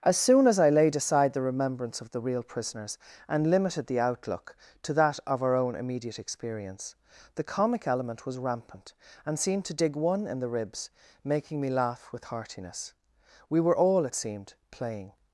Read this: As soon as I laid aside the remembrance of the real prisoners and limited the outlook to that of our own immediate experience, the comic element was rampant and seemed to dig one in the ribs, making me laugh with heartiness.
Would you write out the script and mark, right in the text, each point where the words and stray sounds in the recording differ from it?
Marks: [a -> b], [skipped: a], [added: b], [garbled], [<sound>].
As soon as I laid aside the remembrance of the real prisoners and limited the outlook to that of our own immediate experience, the comic element was rampant and seemed to dig one in the ribs, making me laugh with heartiness. [added: We were all it seemed playing]